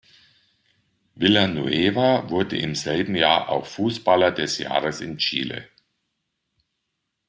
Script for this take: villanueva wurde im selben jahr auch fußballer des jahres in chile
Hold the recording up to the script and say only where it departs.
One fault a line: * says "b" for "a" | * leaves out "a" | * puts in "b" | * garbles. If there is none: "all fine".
all fine